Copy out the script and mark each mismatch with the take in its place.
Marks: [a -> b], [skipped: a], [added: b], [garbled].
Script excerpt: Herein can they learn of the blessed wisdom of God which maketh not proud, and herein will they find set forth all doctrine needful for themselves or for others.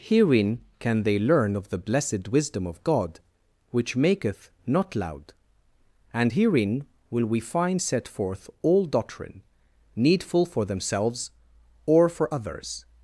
Herein can they learn of the blessed wisdom of God which maketh not [proud, -> loud] and herein will [they -> we] find set forth all doctrine needful for themselves or for others.